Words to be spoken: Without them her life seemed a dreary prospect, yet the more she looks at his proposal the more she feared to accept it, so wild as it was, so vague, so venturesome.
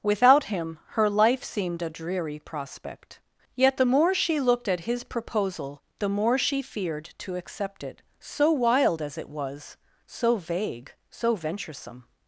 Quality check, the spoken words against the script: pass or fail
fail